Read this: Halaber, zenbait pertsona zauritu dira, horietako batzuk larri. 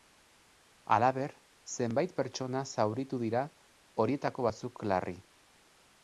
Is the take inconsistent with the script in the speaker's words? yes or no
no